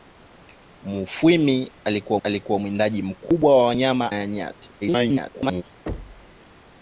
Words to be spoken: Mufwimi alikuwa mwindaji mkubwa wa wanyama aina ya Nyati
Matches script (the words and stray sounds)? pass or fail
fail